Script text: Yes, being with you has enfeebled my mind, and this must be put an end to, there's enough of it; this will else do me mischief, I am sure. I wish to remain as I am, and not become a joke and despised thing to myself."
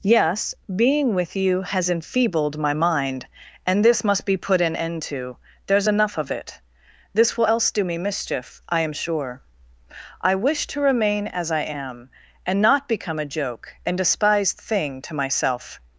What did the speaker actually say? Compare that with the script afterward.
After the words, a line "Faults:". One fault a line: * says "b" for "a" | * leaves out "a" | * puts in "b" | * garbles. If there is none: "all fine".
Yes, being with you has enfeebled my mind, and this must be put an end to, there's enough of it; this will else do me mischief, I am sure. I wish to remain as I am, and not become a joke and despised thing to myself."
Faults:
all fine